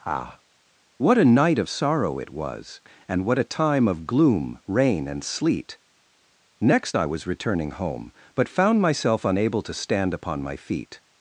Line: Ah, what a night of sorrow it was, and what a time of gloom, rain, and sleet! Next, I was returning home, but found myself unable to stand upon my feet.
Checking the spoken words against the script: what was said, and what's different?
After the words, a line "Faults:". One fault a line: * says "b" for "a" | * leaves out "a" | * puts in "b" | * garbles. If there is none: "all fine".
Ah, what a night of sorrow it was, and what a time of gloom, rain, and sleet! Next, I was returning home, but found myself unable to stand upon my feet.
Faults:
all fine